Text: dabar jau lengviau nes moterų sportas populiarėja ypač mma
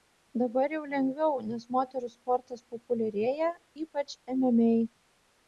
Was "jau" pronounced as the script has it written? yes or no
yes